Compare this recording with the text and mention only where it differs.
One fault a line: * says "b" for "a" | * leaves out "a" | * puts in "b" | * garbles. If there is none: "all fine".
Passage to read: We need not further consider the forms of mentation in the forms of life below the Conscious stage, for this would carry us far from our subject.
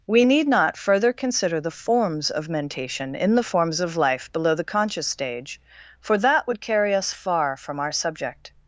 * says "that" for "this"